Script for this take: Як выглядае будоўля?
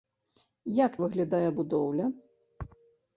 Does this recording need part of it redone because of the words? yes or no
no